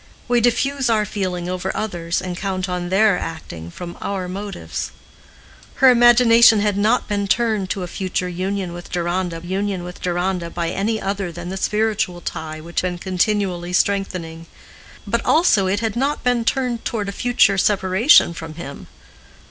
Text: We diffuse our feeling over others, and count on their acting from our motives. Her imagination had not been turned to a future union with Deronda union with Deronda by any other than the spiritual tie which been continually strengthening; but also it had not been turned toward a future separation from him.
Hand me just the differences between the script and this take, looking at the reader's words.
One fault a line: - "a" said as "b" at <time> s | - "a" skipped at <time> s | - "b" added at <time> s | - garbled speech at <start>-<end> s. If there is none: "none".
none